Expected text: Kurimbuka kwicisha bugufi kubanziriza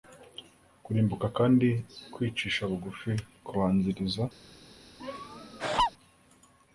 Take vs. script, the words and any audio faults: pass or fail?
fail